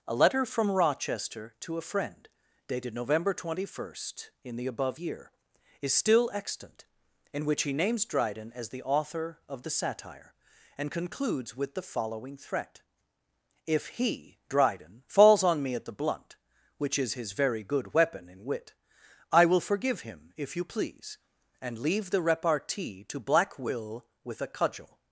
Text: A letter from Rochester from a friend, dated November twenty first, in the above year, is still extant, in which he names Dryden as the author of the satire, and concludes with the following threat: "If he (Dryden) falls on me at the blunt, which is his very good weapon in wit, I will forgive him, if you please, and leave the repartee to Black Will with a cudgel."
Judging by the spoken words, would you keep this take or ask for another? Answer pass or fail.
fail